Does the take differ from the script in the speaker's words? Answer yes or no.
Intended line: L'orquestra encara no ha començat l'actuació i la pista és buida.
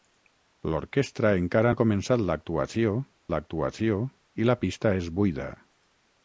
yes